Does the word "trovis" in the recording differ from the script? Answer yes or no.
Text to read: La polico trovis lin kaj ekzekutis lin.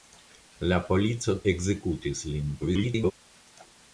yes